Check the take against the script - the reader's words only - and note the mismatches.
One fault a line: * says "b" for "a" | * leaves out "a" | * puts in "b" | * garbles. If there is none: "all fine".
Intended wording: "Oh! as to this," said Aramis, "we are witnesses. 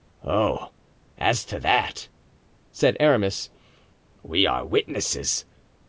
* says "that" for "this"